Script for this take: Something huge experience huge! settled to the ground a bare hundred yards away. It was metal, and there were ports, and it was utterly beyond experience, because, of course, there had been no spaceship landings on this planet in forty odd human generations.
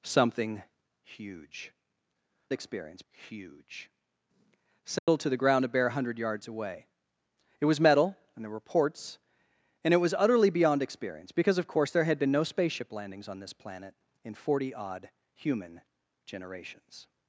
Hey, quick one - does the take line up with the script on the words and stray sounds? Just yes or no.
no